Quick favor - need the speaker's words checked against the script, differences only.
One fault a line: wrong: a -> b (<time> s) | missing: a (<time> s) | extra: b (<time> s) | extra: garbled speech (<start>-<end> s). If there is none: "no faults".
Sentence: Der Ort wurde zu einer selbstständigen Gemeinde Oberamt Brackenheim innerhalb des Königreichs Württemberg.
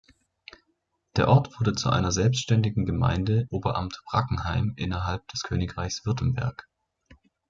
no faults